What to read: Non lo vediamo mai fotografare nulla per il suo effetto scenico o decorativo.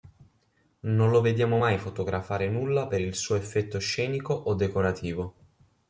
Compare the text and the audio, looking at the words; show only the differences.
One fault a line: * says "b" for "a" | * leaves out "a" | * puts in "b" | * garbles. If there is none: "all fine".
all fine